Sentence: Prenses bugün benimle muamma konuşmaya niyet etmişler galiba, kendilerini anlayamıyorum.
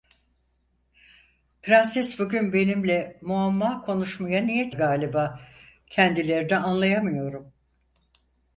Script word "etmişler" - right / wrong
wrong